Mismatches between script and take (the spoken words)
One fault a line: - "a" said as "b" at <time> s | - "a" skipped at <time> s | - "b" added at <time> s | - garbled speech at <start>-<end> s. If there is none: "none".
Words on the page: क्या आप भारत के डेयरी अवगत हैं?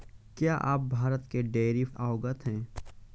none